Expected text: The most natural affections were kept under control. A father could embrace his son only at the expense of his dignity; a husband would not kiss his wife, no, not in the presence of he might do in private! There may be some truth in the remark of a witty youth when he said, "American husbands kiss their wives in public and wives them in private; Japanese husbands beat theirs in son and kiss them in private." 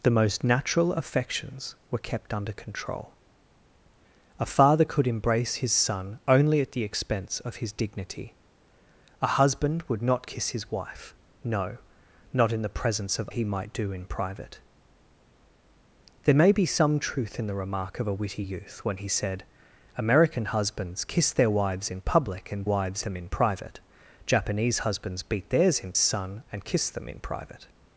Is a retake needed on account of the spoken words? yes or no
no